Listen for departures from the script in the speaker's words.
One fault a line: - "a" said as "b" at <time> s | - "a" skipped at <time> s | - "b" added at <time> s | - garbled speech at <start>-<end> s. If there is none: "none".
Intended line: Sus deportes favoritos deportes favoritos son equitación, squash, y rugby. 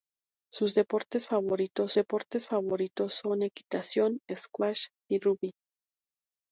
none